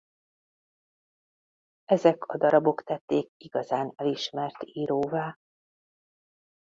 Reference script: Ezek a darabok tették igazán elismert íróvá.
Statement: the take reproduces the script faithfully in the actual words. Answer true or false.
true